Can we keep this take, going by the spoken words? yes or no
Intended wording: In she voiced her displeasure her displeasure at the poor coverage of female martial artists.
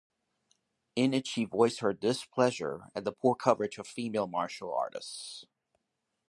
no